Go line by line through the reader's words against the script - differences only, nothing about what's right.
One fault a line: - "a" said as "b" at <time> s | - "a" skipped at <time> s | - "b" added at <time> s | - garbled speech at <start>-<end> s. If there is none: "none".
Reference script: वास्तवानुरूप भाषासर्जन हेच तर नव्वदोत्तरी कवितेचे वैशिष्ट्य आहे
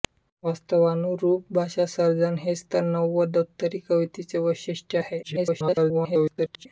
- garbled speech at 5.2-6.7 s